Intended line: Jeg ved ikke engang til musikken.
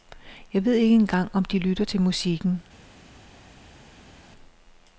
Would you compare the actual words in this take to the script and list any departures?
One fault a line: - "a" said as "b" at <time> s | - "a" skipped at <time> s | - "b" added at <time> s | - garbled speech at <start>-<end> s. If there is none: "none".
- "om de lytter" added at 1.3 s